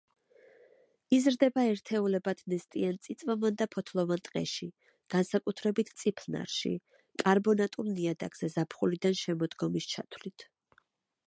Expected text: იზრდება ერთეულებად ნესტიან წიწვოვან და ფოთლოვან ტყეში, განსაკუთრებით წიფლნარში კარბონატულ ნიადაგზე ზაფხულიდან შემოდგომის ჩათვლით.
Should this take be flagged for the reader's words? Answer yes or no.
no